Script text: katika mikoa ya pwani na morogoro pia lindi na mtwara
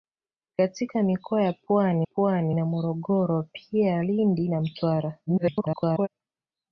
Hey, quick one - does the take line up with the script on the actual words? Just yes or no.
no